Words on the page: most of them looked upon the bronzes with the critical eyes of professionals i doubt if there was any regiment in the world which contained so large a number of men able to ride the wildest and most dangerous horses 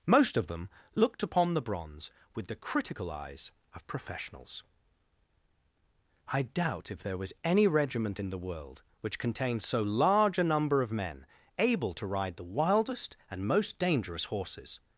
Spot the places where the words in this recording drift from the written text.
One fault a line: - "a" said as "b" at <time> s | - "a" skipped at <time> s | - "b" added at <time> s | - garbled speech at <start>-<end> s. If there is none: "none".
- "bronzes" said as "bronze" at 1.6 s